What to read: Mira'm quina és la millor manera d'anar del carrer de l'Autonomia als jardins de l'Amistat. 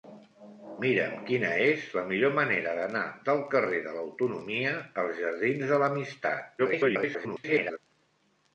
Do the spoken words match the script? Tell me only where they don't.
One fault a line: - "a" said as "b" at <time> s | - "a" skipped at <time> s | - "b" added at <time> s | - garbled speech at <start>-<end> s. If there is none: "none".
- garbled speech at 6.6-7.8 s